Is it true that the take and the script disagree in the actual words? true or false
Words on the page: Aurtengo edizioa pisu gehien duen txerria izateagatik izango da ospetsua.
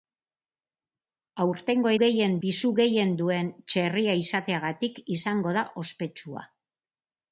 true